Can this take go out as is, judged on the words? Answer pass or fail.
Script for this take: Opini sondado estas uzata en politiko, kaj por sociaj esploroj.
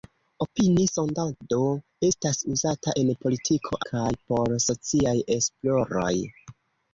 pass